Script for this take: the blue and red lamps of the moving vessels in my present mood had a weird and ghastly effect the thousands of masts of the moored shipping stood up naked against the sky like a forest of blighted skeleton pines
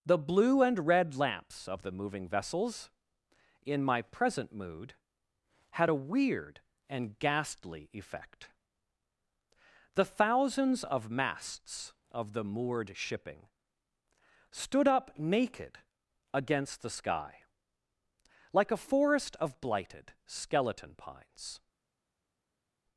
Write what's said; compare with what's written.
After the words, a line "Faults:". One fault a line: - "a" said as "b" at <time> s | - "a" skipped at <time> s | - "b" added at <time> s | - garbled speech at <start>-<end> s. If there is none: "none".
the blue and red lamps of the moving vessels in my present mood had a weird and ghastly effect the thousands of masts of the moored shipping stood up naked against the sky like a forest of blighted skeleton pines
Faults:
none